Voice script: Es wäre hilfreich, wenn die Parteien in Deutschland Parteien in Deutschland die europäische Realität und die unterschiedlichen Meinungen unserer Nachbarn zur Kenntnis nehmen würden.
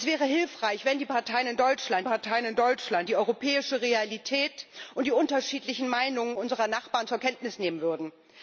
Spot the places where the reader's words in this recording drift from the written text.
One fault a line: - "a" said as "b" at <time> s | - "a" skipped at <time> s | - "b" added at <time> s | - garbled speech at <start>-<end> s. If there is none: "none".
none